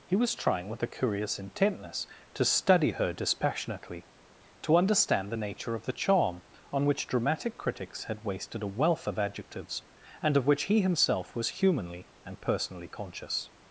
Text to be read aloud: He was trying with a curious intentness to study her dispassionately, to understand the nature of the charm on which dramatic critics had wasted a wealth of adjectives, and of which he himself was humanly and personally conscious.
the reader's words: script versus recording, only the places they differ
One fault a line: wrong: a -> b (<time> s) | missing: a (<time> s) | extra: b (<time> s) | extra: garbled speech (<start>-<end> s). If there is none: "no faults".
no faults